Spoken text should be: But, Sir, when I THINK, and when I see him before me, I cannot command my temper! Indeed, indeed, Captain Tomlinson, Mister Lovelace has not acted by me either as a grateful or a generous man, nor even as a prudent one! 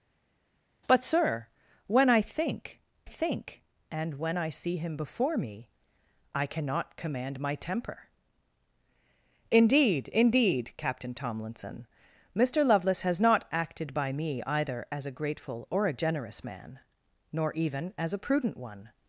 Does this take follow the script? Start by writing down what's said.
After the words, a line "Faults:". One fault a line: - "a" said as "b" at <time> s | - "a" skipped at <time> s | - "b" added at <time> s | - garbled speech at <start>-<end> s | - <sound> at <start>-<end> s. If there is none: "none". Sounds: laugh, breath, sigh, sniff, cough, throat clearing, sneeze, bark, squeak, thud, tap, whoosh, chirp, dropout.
But, Sir, when I THINK THINK, and when I see him before me, I cannot command my temper! Indeed, indeed, Captain Tomlinson, Mister Lovelace has not acted by me either as a grateful or a generous man, nor even as a prudent one!
Faults:
- "THINK" added at 3.0 s